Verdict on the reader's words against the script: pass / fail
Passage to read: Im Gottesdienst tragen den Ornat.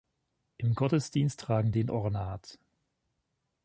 pass